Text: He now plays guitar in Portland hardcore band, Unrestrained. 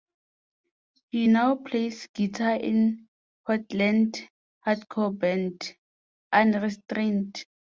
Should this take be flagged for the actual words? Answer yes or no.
no